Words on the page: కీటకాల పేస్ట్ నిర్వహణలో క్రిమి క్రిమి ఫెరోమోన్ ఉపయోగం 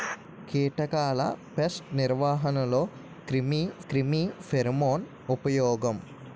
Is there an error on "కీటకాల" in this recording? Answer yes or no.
no